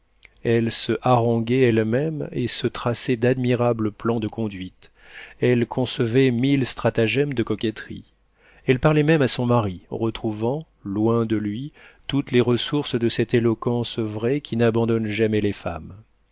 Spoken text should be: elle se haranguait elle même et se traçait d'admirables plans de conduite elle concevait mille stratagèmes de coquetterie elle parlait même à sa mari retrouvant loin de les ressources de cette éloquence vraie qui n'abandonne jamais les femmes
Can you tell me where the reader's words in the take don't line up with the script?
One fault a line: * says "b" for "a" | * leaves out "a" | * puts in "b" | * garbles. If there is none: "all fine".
* says "son" for "sa"
* puts in "lui toutes"